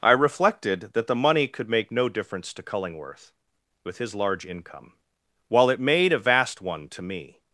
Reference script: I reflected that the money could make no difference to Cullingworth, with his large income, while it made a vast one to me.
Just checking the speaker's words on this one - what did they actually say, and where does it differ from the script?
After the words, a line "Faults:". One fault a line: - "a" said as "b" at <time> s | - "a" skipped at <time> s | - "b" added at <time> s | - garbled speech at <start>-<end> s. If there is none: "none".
I reflected that the money could make no difference to Cullingworth, with his large income, while it made a vast one to me.
Faults:
none